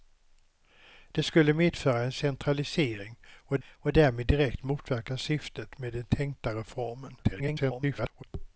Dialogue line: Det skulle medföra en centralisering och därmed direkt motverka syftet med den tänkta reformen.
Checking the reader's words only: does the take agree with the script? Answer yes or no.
no